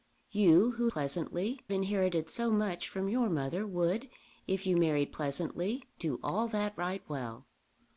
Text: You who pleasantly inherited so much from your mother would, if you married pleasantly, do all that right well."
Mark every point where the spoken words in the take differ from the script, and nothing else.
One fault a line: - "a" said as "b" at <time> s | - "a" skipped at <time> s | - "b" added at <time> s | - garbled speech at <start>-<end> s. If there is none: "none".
none